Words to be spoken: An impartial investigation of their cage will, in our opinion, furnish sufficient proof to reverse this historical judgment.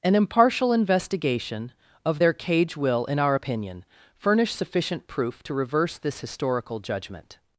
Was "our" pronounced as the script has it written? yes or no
yes